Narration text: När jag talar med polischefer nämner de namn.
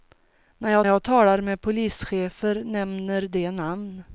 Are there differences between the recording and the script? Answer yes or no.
yes